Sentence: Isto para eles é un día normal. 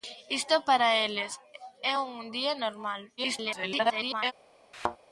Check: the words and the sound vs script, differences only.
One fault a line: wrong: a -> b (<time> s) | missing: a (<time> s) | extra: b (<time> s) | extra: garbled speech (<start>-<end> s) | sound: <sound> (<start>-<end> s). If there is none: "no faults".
extra: garbled speech (3.2-4.3 s)
sound: thud (4.7-5.0 s)